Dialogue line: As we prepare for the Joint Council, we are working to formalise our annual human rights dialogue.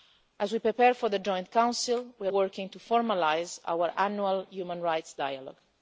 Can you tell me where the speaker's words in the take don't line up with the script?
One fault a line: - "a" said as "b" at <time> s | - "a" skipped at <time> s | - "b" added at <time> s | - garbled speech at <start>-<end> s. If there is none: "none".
none